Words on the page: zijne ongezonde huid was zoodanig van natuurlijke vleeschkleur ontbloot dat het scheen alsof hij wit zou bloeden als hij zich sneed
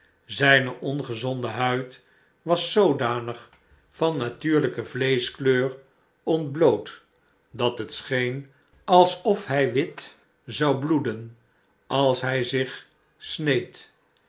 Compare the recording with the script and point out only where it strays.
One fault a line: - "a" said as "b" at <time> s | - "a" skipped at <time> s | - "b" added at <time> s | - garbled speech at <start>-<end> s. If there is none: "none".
none